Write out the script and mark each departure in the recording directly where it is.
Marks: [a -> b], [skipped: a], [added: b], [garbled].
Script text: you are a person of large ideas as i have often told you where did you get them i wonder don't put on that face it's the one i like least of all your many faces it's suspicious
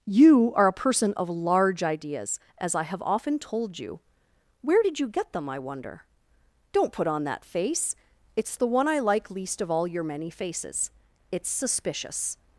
you are a person of large ideas as i have often told you where did you get them i wonder don't put on that face it's the one i like least of all your many faces it's suspicious